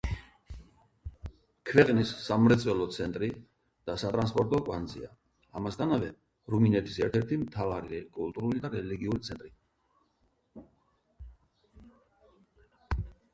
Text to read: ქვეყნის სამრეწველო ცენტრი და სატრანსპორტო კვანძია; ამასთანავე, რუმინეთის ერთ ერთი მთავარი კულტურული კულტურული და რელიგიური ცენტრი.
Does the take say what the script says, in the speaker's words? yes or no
no